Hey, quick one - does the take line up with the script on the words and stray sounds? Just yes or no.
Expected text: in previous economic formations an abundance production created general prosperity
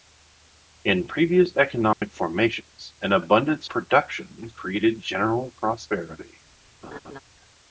no